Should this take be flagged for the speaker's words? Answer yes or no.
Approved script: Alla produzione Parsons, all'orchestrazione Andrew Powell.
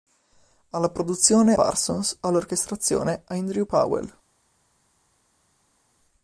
no